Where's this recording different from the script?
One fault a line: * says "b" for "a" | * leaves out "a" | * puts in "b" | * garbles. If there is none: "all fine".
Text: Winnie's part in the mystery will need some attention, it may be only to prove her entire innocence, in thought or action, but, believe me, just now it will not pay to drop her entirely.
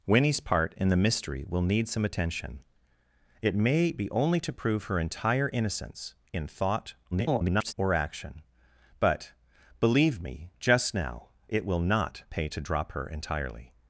* garbles